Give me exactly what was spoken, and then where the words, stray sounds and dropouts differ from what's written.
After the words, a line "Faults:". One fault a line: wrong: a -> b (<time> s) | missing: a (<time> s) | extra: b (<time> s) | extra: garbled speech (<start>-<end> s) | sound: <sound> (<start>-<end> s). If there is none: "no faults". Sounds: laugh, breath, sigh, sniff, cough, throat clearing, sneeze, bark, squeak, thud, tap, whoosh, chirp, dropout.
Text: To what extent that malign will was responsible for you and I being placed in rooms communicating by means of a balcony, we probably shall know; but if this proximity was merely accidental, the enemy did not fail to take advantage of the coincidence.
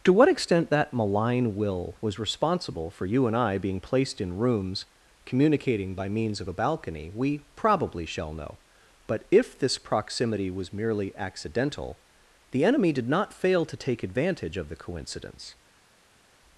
To what extent that malign will was responsible for you and I being placed in rooms communicating by means of a balcony, we probably shall know; but if this proximity was merely accidental, the enemy did not fail to take advantage of the coincidence.
Faults:
no faults